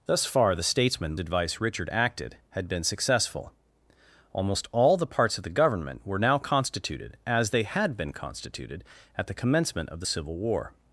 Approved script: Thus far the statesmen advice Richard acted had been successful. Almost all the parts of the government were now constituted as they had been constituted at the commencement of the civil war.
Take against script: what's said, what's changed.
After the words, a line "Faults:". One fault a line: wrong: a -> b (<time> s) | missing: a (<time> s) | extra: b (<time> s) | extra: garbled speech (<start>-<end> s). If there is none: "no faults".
Thus far the statesmen advice Richard acted had been successful. Almost all the parts of the government were now constituted as they had been constituted at the commencement of the civil war.
Faults:
no faults